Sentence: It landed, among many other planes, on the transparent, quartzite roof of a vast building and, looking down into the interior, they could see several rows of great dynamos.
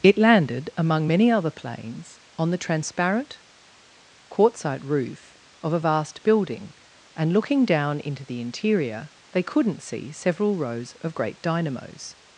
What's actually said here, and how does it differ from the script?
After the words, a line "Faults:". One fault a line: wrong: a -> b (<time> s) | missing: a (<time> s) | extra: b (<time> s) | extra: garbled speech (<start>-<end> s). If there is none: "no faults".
It landed, among many other planes, on the transparent, quartzite roof of a vast building and, looking down into the interior, they couldn't see several rows of great dynamos.
Faults:
wrong: could -> couldn't (9.4 s)